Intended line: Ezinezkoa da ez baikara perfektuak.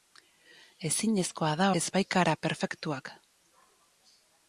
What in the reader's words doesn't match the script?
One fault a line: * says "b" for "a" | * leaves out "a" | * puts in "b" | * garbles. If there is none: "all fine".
all fine